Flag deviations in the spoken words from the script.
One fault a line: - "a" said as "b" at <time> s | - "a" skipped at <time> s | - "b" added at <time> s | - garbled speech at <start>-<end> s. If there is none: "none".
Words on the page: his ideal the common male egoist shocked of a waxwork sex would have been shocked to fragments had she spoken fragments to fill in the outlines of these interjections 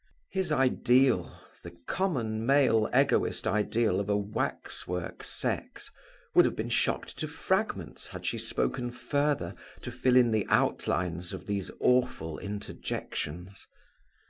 - "shocked" said as "ideal" at 3.5 s
- "fragments" said as "further" at 8.9 s
- "awful" added at 11.8 s